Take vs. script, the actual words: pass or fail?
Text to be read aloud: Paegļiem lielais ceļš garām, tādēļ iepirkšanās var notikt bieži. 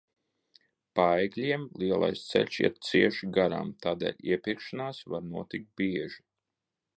fail